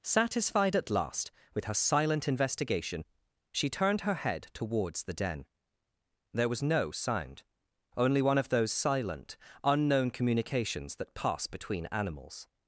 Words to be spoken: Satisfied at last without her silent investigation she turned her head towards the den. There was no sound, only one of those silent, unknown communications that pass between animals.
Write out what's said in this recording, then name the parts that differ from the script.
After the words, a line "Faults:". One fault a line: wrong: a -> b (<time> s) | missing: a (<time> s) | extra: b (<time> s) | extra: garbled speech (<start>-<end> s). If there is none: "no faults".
Satisfied at last with her silent investigation she turned her head towards the den. There was no sound, only one of those silent, unknown communications that pass between animals.
Faults:
wrong: without -> with (1.5 s)